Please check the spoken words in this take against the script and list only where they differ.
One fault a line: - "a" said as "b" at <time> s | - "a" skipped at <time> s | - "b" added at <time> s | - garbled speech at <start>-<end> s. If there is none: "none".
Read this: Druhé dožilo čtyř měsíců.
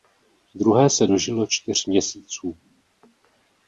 - "se" added at 0.9 s